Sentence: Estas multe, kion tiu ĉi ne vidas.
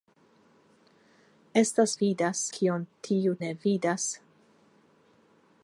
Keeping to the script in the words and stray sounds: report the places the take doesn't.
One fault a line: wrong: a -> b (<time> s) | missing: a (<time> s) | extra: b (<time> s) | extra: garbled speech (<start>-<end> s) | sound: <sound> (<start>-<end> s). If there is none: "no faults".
wrong: multe -> vidas (2.0 s)
missing: ĉi (3.4 s)